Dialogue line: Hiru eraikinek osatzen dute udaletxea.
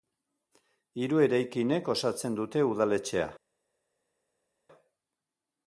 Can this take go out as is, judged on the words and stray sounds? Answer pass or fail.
pass